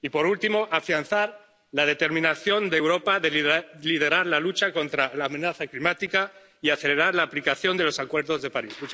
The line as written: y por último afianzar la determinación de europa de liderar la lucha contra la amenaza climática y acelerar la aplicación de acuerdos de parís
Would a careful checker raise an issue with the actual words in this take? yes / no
yes